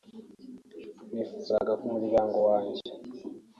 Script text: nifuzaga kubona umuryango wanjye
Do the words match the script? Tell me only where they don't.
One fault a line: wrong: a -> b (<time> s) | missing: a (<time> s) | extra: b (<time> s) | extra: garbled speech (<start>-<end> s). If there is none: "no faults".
missing: kubona (1.7 s)